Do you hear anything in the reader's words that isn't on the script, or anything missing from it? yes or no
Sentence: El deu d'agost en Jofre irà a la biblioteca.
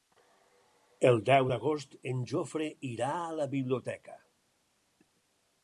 no